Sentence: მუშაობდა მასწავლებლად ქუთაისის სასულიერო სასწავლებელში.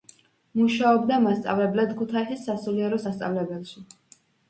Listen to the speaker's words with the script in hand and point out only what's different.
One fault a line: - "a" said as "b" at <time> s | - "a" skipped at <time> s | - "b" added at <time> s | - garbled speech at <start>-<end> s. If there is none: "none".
none